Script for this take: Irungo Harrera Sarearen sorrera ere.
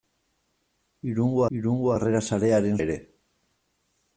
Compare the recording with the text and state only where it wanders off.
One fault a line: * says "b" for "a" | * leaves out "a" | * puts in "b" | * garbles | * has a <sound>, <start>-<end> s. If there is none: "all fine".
* puts in "irungo"
* leaves out "sorrera"